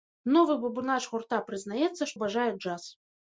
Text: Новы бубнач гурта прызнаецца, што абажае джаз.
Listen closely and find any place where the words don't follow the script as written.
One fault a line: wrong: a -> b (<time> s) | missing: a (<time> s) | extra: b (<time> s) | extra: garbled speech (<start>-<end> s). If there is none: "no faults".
missing: што (2.1 s)